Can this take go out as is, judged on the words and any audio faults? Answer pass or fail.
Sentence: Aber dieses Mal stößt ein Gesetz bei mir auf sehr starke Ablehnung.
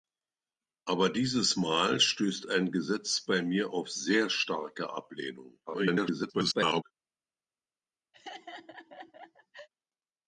fail